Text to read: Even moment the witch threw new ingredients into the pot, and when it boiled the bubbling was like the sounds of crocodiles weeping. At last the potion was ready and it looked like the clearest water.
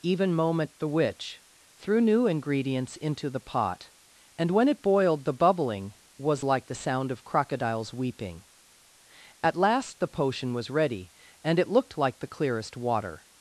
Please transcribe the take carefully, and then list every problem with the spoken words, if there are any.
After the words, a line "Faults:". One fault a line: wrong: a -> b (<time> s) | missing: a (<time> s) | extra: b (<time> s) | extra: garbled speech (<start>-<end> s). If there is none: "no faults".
Even moment the witch threw new ingredients into the pot, and when it boiled the bubbling was like the sound of crocodiles weeping. At last the potion was ready and it looked like the clearest water.
Faults:
wrong: sounds -> sound (6.7 s)